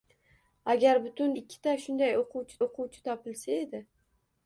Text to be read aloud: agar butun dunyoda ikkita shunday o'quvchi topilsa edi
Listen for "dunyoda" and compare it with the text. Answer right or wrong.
wrong